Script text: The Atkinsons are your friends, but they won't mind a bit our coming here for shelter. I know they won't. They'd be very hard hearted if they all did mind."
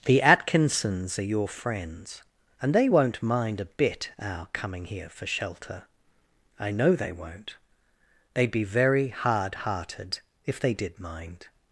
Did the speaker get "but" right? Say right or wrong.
wrong